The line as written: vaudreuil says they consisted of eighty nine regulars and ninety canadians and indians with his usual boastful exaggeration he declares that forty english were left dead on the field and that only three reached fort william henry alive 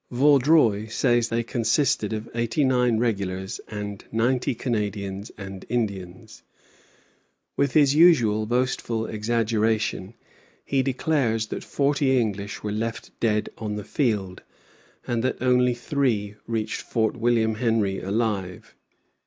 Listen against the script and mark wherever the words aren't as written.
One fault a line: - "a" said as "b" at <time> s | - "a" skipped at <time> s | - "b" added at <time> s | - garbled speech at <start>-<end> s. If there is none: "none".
none